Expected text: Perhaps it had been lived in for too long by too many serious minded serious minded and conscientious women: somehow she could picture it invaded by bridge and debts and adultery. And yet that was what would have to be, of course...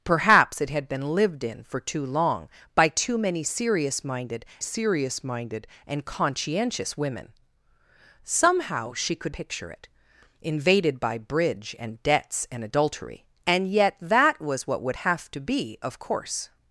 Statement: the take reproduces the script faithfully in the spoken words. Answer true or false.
true